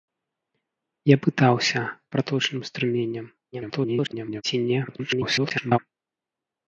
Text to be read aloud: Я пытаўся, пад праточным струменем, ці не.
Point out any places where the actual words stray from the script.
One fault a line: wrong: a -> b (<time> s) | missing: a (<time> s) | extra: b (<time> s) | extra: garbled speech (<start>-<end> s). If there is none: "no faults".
missing: пад (1.8 s)
extra: garbled speech (3.5-4.4 s)
extra: garbled speech (4.9-5.8 s)